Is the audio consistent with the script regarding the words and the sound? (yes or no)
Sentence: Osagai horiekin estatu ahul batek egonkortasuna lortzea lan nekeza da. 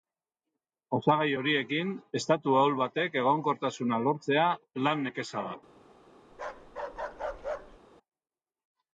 no